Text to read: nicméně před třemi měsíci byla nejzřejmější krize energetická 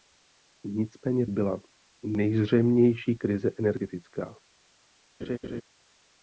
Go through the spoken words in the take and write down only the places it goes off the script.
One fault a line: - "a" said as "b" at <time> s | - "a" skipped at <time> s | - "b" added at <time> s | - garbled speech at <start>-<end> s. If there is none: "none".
- "před třemi měsíci" skipped at 1.3 s